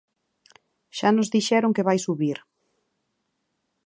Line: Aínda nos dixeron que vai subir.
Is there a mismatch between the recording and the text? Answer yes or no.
yes